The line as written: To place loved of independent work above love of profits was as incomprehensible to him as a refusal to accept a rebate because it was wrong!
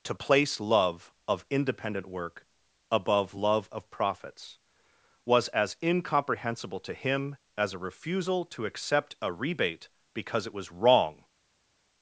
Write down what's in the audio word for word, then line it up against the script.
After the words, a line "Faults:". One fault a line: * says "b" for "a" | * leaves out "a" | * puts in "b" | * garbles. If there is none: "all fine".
To place love of independent work above love of profits was as incomprehensible to him as a refusal to accept a rebate because it was wrong!
Faults:
* says "love" for "loved"